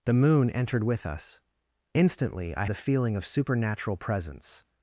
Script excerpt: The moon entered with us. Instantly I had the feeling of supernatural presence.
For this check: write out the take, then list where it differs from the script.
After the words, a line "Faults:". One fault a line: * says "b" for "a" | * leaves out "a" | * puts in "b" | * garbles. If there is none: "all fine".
The moon entered with us. Instantly I the feeling of supernatural presence.
Faults:
* leaves out "had"